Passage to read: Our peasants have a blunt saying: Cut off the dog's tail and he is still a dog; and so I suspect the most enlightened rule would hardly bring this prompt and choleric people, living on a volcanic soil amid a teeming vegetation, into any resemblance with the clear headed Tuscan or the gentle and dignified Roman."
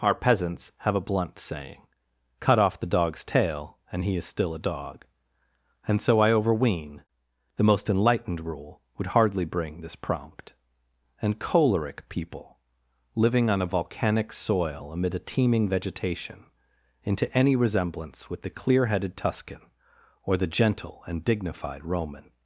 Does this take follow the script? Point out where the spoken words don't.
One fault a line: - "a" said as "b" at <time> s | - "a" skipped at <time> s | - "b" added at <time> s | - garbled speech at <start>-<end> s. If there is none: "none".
- "suspect" said as "overween" at 6.3 s